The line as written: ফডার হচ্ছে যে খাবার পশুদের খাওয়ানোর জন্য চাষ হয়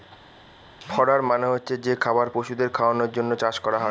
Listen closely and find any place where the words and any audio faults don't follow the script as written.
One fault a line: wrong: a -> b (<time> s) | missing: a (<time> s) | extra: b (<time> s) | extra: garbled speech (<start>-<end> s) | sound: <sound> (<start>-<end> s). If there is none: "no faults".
extra: মানে (1.2 s)
extra: করা (3.6 s)